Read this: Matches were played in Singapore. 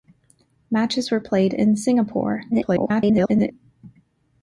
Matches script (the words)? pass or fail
fail